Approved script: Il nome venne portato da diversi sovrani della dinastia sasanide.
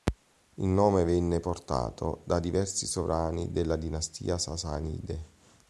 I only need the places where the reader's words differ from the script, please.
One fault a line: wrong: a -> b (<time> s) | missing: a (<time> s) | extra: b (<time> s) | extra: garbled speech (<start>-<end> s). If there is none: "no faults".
no faults